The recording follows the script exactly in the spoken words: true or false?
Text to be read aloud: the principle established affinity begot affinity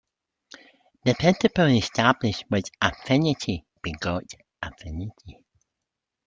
false